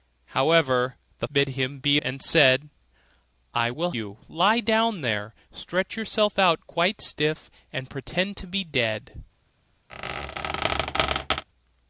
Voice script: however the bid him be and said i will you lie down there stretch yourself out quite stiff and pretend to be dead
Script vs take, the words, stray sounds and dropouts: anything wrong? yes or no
yes